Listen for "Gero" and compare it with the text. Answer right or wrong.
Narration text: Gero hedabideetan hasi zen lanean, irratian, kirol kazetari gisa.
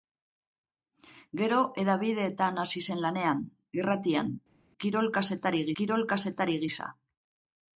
right